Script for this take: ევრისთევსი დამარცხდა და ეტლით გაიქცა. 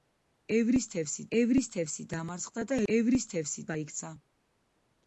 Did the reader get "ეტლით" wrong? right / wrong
wrong